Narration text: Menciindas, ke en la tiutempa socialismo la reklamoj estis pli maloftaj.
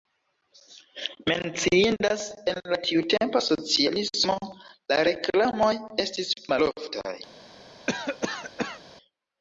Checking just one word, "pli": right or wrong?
wrong